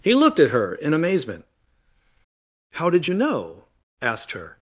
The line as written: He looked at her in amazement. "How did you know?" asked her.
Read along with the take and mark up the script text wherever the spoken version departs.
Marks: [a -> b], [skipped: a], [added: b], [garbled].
He looked at her in amazement. "How did you know?" asked her.